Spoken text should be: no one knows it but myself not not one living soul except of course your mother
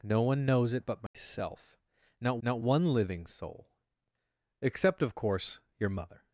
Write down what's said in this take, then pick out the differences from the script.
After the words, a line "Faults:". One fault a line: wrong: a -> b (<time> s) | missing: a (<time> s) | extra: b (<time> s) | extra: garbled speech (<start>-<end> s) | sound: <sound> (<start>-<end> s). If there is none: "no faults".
no one knows it but myself not not one living soul except of course your mother
Faults:
sound: dropout (1.1-1.1 s)